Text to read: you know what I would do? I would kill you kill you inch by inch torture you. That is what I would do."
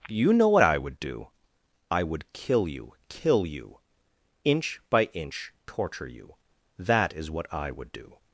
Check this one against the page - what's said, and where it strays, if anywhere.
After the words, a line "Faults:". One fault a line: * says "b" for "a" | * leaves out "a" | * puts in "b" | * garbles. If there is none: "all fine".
you know what I would do? I would kill you kill you inch by inch torture you. That is what I would do."
Faults:
all fine